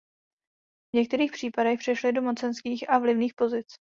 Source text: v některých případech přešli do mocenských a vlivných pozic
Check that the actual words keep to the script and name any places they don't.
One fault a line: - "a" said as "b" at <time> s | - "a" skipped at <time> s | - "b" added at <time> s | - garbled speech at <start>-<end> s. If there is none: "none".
none